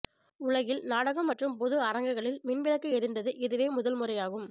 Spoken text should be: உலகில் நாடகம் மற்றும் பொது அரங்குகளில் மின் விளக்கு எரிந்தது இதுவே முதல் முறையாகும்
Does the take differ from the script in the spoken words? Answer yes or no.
no